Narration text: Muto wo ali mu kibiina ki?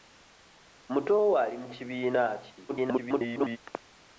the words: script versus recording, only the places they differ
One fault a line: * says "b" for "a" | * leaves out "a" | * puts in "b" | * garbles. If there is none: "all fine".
* garbles